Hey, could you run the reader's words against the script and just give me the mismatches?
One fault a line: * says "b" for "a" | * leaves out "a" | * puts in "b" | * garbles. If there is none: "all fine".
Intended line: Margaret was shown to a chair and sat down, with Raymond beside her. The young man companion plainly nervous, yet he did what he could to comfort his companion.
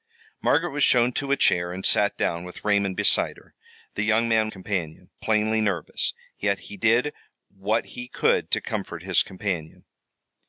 all fine